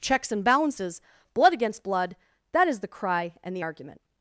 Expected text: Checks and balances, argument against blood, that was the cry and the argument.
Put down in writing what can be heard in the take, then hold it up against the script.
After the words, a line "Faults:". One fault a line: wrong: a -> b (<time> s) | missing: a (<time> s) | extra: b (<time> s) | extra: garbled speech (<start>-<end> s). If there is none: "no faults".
Checks and balances, blood against blood, that is the cry and the argument.
Faults:
wrong: argument -> blood (1.3 s)
wrong: was -> is (2.7 s)